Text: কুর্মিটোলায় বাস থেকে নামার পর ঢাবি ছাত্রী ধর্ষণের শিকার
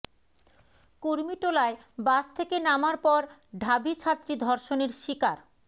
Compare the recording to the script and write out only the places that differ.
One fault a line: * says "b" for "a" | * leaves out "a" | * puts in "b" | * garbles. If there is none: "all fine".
all fine